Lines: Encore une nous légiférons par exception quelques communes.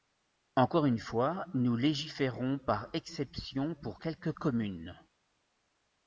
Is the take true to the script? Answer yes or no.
no